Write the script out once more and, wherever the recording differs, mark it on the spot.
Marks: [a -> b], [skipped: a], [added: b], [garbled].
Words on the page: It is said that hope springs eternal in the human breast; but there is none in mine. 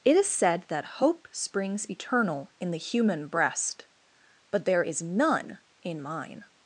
It is said that hope springs eternal in the human breast; but there is none in mine.